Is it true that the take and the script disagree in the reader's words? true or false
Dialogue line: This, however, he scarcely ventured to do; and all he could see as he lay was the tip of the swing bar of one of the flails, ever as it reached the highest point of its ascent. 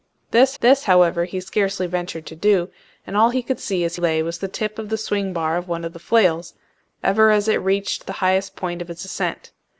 true